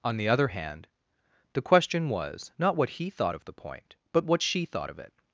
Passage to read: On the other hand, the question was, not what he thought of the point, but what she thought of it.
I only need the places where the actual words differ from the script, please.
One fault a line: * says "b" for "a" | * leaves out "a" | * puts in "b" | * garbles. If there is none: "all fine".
all fine